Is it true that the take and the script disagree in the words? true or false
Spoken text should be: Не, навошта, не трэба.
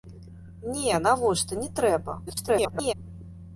true